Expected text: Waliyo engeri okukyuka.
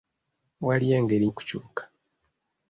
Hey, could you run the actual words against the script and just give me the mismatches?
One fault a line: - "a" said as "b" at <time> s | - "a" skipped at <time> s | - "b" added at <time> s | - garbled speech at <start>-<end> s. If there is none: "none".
none